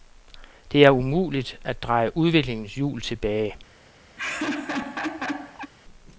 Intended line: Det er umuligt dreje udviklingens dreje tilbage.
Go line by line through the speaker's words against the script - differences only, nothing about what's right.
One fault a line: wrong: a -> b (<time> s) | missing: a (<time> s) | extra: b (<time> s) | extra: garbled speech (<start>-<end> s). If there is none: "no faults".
extra: at (1.6 s)
wrong: dreje -> hjul (2.7 s)